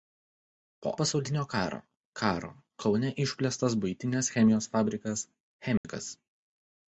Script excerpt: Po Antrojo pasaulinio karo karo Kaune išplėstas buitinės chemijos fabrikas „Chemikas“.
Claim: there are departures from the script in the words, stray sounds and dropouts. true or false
true